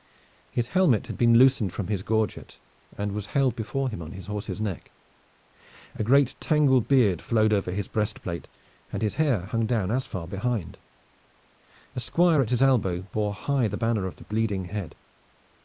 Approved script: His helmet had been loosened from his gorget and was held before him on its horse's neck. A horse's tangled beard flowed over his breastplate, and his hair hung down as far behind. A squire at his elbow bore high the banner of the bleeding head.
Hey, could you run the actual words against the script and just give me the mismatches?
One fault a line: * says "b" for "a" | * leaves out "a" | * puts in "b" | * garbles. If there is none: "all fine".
* says "his" for "its"
* says "great" for "horse's"